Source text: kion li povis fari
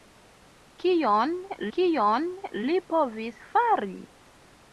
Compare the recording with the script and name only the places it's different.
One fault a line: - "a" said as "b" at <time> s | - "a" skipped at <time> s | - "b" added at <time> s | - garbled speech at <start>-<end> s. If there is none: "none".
- "kion" added at 1.8 s